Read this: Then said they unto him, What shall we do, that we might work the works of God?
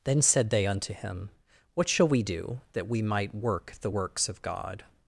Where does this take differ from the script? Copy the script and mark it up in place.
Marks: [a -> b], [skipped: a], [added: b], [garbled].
Then said they unto him, What shall we do, that we might work the works of God?